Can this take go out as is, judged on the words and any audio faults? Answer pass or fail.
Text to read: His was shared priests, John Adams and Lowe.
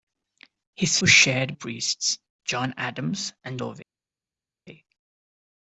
pass